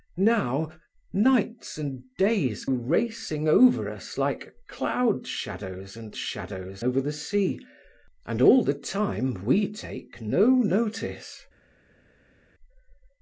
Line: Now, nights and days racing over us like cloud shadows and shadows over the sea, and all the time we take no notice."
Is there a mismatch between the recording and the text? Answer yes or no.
no